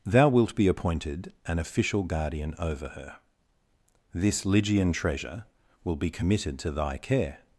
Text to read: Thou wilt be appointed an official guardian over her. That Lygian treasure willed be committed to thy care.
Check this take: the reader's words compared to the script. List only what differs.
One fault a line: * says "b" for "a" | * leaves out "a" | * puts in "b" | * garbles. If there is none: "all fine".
* says "This" for "That"
* says "will" for "willed"